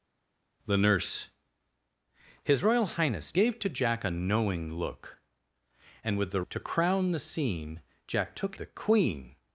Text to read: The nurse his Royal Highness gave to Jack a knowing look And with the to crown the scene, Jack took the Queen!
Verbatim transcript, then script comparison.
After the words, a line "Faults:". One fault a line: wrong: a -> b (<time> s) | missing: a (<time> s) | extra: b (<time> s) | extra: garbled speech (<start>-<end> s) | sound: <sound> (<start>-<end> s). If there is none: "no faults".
The nurse his Royal Highness gave to Jack a knowing look And with the to crown the scene, Jack took the Queen!
Faults:
no faults